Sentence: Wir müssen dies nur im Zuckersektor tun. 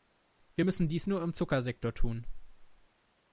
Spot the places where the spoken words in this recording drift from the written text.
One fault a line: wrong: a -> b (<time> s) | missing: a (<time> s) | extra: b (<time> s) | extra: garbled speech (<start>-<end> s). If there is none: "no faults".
no faults